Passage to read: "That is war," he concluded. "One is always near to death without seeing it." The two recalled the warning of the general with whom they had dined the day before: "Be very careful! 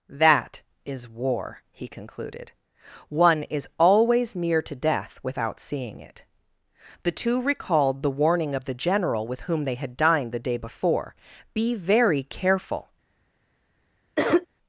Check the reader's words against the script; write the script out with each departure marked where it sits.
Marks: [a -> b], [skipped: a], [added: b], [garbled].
"That is war," he concluded. "One is always near to death without seeing it." The two recalled the warning of the general with whom they had dined the day before: "Be very careful!